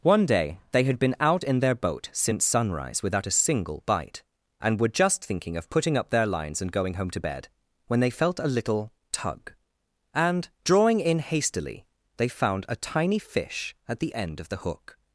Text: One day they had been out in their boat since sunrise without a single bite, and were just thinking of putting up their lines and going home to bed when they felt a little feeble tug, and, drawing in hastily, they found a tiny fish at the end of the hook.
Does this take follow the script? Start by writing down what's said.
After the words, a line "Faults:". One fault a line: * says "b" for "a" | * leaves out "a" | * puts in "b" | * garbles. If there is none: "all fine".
One day they had been out in their boat since sunrise without a single bite, and were just thinking of putting up their lines and going home to bed when they felt a little tug, and, drawing in hastily, they found a tiny fish at the end of the hook.
Faults:
* leaves out "feeble"